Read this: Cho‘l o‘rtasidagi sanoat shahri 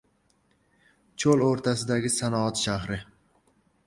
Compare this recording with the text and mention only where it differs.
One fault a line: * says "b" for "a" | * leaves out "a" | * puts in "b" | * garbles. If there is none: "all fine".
all fine